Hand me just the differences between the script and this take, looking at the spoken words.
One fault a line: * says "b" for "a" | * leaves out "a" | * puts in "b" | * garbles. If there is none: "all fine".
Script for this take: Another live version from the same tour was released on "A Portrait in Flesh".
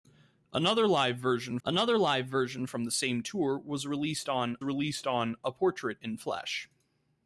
* puts in "another live version"
* puts in "released on"